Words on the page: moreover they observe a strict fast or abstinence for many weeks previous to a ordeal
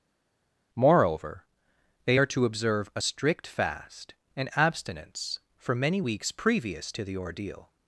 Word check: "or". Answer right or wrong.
wrong